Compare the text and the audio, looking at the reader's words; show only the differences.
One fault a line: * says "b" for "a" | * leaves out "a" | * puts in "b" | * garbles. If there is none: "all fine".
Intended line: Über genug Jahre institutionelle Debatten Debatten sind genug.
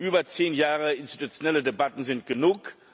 * says "zehn" for "genug"
* leaves out "Debatten"